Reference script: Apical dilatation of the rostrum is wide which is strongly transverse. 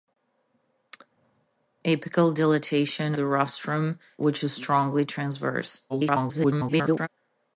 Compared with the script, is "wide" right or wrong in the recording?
wrong